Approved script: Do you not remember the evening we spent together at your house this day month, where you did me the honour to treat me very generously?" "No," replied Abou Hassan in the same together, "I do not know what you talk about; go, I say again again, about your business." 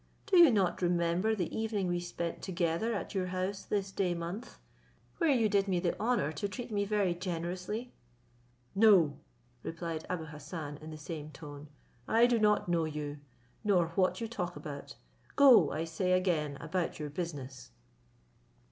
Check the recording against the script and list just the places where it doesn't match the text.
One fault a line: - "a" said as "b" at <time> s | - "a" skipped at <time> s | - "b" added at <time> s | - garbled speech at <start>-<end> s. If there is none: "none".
- "together" said as "tone" at 11.3 s
- "you nor" added at 12.8 s
- "again" skipped at 16.6 s